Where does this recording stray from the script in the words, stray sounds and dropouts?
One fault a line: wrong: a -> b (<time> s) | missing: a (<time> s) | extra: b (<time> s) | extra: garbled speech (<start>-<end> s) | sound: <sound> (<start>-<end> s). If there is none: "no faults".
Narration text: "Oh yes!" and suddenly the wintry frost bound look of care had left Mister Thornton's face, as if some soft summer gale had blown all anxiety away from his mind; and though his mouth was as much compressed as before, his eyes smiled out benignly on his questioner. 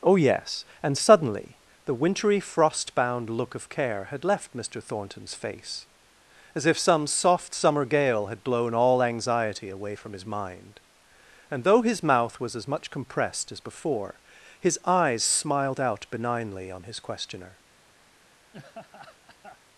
sound: laugh (18.5-19.6 s)